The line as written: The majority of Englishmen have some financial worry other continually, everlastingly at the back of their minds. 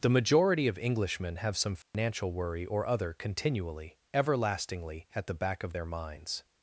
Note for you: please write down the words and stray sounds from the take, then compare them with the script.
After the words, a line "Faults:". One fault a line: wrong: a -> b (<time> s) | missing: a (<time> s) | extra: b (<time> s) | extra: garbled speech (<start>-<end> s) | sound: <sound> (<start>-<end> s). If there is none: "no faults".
The majority of Englishmen have some financial worry or other continually, everlastingly at the back of their minds.
Faults:
sound: dropout (1.8-1.9 s)
extra: or (2.6 s)